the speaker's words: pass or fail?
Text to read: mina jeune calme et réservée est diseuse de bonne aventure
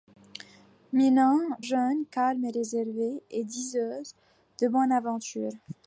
pass